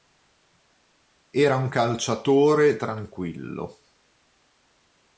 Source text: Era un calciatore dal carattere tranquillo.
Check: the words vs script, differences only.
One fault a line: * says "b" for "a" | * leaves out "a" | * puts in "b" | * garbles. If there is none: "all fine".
* leaves out "dal carattere"